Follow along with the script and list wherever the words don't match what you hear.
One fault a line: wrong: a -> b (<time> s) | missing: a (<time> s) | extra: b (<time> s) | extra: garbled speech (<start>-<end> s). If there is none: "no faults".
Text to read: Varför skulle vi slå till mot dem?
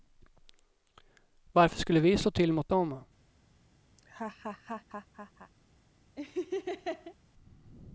no faults